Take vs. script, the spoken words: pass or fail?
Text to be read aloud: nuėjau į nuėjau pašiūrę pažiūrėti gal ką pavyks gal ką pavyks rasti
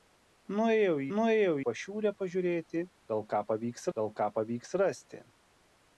pass